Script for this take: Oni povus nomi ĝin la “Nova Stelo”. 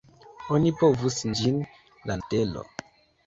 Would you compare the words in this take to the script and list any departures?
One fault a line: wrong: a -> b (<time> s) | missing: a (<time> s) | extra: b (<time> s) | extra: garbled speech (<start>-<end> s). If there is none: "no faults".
missing: nomi (1.2 s)
missing: Nova (2.2 s)